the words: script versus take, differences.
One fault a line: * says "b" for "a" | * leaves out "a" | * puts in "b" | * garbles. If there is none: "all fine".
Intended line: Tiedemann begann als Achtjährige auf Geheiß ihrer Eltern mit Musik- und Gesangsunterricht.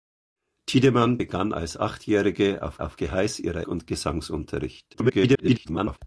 * puts in "auf"
* leaves out "Eltern mit Musik"
* garbles